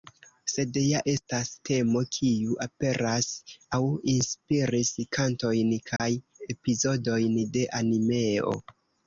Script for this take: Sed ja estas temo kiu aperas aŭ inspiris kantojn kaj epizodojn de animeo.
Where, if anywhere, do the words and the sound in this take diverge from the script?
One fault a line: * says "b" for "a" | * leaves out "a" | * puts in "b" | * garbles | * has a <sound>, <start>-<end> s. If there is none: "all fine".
* has a dropout, 6.0-6.0 s